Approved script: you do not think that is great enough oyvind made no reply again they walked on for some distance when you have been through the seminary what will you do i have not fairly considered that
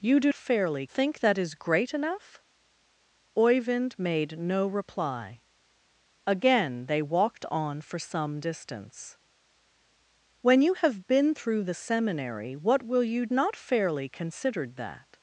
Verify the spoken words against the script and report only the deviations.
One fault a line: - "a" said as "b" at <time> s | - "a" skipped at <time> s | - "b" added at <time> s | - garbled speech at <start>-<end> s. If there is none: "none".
- "not" said as "fairly" at 0.3 s
- "do i have" skipped at 13.3 s